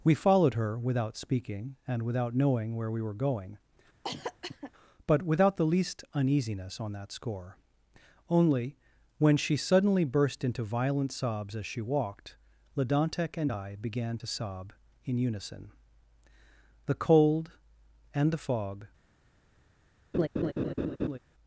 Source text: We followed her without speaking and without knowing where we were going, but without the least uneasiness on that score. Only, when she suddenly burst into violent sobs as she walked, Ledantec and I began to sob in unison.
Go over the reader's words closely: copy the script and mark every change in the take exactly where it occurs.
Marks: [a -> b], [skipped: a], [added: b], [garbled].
We followed her without speaking and without knowing where we were going, but without the least uneasiness on that score. Only, when she suddenly burst into violent sobs as she walked, Ledantec and I began to sob in unison. [added: The cold and the fog]